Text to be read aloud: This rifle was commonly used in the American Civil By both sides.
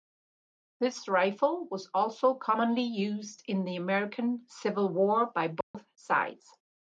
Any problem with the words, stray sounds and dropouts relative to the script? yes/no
yes